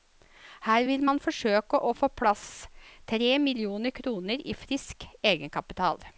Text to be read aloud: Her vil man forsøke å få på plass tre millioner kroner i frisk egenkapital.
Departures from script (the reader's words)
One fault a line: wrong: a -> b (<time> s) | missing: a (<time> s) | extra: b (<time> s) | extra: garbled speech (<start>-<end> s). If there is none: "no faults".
no faults